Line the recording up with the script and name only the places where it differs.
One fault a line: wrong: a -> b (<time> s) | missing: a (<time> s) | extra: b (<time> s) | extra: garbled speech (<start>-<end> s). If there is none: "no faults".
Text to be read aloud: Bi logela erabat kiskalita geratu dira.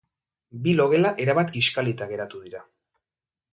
no faults